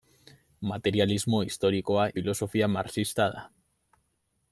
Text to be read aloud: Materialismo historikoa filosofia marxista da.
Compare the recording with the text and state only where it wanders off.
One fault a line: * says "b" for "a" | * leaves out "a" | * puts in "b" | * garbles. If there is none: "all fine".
all fine